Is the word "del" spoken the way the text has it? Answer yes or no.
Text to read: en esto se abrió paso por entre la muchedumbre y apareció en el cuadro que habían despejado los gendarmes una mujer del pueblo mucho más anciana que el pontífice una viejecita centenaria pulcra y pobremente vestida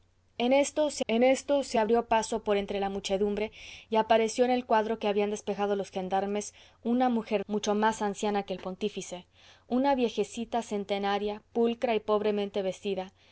no